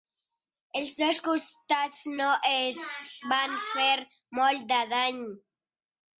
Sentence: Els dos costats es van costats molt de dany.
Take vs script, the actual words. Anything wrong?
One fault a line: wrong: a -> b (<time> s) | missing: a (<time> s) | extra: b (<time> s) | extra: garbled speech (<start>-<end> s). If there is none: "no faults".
extra: no (2.2 s)
wrong: costats -> fer (3.7 s)